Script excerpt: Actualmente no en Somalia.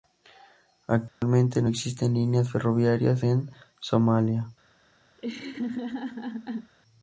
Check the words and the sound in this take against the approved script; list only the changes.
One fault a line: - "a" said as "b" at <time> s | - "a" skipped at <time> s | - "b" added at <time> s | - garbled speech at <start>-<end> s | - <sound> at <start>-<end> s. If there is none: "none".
- dropout at 1.1-1.2 s
- "existen líneas ferroviarias" added at 1.7 s
- laugh at 5.2-6.7 s